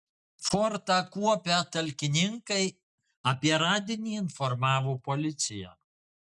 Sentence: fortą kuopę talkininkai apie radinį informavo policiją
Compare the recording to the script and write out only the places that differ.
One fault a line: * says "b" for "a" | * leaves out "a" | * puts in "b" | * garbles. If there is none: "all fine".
all fine